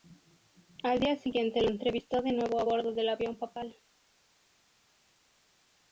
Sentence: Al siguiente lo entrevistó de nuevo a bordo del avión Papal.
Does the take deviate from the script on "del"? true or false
false